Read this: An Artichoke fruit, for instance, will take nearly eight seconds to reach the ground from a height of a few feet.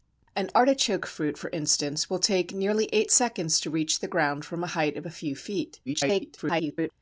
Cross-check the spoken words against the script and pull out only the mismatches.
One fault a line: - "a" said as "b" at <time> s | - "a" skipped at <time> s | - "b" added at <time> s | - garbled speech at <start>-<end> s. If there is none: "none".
- garbled speech at 5.9-6.9 s